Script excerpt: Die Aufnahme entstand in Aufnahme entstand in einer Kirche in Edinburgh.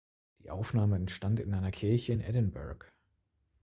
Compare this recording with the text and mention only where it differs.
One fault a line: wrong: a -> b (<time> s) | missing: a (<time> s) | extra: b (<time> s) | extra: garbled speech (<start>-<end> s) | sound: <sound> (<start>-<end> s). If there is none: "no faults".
missing: Aufnahme entstand in (1.5 s)